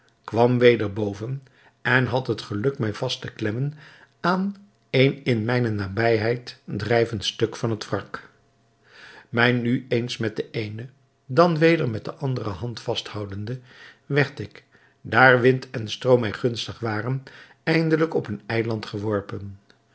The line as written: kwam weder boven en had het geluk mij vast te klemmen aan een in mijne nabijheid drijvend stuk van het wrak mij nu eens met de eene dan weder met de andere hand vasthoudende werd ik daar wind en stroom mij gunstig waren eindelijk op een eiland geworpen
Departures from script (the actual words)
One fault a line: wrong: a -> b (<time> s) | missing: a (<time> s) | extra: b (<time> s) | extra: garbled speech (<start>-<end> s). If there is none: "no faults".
no faults